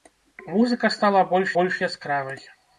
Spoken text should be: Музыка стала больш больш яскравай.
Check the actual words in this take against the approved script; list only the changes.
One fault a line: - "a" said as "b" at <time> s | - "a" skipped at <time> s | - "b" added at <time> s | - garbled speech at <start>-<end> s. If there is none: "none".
none